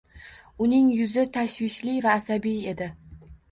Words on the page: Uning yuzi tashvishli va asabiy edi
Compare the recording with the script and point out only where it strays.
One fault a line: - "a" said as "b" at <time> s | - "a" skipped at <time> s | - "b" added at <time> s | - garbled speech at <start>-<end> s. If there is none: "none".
none